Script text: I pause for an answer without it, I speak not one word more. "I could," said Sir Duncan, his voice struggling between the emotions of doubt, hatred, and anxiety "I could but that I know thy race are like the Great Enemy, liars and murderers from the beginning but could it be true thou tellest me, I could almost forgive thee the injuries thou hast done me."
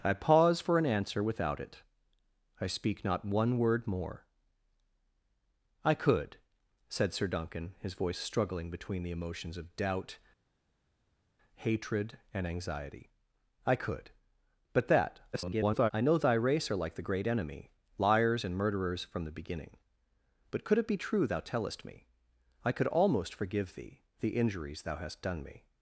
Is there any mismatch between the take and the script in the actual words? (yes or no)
yes